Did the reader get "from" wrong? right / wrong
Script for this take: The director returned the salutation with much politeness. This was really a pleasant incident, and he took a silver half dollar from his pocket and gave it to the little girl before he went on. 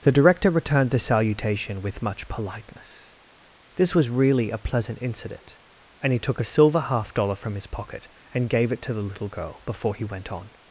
right